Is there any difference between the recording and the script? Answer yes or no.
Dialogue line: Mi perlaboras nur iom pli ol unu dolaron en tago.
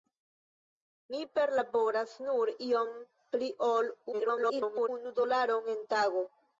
yes